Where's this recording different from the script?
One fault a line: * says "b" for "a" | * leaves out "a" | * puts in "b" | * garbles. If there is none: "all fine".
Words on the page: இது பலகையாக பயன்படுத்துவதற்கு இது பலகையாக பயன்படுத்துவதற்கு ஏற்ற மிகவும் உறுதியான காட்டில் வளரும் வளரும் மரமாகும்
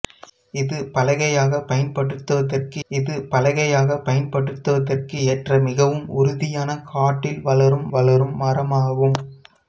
all fine